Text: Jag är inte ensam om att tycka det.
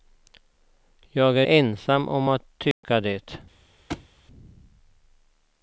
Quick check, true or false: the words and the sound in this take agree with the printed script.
false